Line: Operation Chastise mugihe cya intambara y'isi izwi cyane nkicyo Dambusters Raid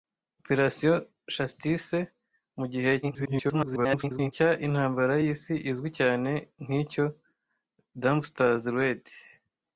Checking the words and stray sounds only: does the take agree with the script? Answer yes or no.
no